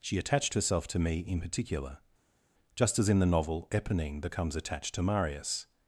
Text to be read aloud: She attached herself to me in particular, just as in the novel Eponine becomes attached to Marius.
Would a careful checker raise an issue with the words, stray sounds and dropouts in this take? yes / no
no